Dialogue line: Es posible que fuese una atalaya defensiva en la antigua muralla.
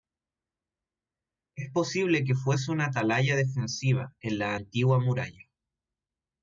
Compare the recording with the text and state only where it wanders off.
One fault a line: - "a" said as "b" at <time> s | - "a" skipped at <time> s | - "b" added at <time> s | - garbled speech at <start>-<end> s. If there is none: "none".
none